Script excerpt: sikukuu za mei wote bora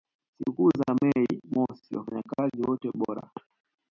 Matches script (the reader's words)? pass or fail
fail